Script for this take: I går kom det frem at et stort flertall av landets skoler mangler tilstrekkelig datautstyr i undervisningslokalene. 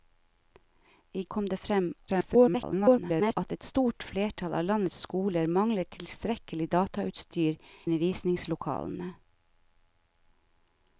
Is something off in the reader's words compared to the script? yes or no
yes